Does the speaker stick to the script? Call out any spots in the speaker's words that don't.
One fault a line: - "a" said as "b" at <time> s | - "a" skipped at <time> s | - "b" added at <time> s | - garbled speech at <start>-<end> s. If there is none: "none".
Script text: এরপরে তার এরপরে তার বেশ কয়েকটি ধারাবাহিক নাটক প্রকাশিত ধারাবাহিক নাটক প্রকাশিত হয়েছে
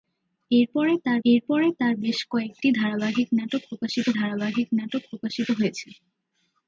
none